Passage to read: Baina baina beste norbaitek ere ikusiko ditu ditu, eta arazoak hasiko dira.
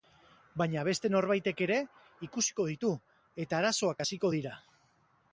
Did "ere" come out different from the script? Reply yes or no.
no